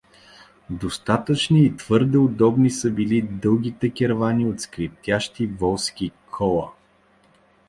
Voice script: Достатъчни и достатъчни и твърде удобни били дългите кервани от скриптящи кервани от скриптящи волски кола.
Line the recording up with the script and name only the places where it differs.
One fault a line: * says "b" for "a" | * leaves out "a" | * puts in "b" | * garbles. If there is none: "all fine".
* leaves out "достатъчни и"
* puts in "са"
* leaves out "кервани от скриптящи"